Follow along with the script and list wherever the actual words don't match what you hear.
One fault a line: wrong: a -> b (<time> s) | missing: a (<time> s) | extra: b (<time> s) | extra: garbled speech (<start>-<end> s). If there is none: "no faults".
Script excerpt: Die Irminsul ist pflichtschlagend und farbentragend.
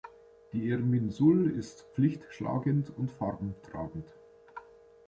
no faults